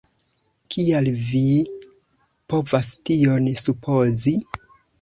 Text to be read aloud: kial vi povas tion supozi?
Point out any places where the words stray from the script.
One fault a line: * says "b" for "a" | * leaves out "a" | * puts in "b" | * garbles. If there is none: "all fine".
all fine